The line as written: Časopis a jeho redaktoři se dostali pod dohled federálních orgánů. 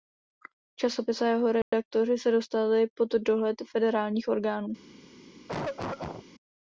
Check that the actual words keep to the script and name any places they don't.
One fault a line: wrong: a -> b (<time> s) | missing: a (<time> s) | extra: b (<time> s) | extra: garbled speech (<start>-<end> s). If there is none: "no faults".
no faults